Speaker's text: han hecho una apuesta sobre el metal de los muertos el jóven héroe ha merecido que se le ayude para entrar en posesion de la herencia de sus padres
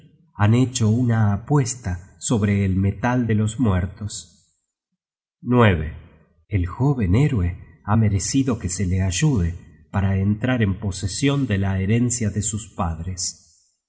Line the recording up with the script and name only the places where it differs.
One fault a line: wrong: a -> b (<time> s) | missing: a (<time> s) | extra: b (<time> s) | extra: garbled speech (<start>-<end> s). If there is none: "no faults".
no faults